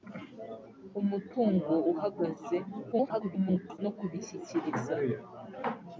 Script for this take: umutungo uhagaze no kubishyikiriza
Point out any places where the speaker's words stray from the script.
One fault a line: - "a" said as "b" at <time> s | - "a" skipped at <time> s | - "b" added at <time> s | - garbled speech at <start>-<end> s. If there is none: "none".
- garbled speech at 2.9-3.8 s